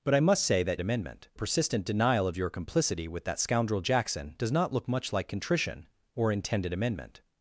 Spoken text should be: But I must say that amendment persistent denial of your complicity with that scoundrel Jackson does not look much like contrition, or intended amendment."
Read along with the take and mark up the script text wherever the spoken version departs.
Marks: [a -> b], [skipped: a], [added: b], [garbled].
But I must say that amendment persistent denial of your complicity with that scoundrel Jackson does not look much like contrition, or intended amendment."